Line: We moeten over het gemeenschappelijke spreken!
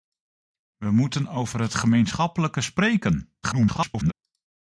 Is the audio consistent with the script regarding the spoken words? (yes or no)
no